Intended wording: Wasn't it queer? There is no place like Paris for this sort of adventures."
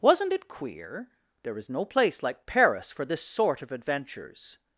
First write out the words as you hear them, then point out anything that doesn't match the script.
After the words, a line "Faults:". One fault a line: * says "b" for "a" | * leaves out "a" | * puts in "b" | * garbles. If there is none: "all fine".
Wasn't it queer? There is no place like Paris for this sort of adventures."
Faults:
all fine